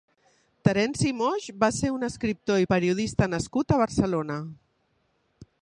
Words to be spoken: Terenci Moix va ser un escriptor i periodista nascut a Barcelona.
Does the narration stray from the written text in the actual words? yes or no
no